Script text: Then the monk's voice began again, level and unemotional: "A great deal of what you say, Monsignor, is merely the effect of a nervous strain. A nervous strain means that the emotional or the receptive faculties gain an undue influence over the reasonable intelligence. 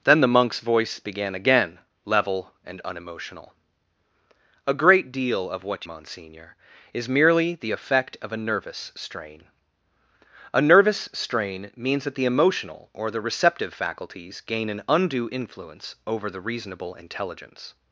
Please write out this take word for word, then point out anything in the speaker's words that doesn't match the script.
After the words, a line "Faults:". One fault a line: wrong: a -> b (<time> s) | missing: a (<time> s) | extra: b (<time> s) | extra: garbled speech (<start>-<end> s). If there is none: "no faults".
Then the monk's voice began again, level and unemotional: "A great deal of what Monsignor, is merely the effect of a nervous strain. A nervous strain means that the emotional or the receptive faculties gain an undue influence over the reasonable intelligence.
Faults:
missing: you say (5.8 s)